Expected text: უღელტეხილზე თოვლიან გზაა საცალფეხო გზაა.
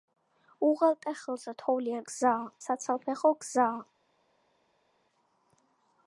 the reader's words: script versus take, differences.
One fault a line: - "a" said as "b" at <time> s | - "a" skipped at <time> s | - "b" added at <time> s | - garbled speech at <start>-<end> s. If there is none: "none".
none